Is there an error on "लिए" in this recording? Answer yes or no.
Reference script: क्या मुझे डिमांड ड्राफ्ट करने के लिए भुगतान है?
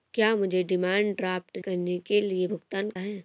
no